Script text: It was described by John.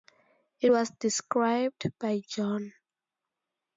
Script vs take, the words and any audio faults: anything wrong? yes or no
no